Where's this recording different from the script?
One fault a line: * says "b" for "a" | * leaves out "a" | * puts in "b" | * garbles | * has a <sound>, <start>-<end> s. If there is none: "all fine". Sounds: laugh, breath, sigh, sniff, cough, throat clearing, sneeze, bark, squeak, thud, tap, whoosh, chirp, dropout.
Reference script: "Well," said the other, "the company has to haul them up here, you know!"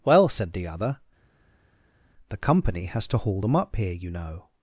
all fine